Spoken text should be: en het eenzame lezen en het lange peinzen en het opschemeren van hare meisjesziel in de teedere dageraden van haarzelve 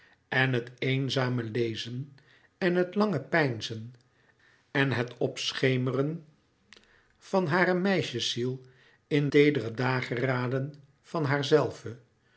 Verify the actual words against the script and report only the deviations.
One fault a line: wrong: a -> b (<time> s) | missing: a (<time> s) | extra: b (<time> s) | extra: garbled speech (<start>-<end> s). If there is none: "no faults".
missing: de (9.3 s)